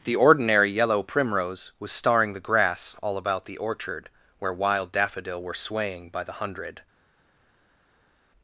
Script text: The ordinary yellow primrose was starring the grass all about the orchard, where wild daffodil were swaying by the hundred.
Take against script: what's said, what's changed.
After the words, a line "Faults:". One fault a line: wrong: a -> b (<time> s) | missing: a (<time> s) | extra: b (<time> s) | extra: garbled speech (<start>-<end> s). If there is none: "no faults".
The ordinary yellow primrose was starring the grass all about the orchard, where wild daffodil were swaying by the hundred.
Faults:
no faults